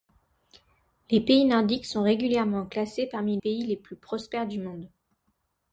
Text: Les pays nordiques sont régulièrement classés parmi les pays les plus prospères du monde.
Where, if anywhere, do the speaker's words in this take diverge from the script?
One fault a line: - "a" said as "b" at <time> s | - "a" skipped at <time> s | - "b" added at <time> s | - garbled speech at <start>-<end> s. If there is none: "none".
- "les" skipped at 3.4 s